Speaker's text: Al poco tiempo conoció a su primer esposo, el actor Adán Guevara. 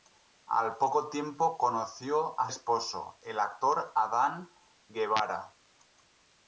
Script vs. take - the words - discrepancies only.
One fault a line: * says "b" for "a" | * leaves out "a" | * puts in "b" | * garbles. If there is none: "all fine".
* leaves out "su primer"